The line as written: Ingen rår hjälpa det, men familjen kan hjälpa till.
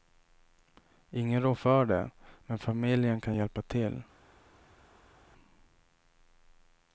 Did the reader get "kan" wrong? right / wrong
right